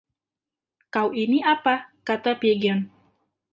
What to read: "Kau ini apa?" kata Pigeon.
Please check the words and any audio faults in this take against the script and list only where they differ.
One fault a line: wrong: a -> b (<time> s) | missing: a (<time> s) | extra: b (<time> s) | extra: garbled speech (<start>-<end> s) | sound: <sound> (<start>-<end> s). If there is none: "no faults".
no faults